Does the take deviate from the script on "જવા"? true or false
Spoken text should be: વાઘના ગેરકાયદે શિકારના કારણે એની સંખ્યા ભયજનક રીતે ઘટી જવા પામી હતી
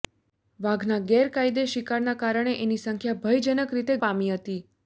true